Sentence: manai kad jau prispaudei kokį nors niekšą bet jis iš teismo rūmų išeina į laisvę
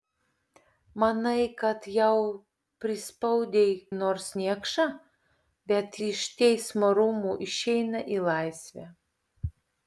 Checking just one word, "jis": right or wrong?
wrong